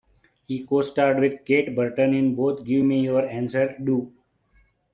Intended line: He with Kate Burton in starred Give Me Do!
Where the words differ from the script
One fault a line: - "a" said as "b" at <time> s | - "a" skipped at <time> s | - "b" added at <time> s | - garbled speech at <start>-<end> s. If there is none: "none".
- "co starred" added at 0.6 s
- "starred" said as "both" at 2.4 s
- "Your Answer" added at 3.0 s